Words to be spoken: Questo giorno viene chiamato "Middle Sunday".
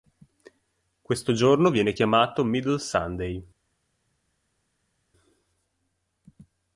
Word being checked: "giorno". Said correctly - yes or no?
yes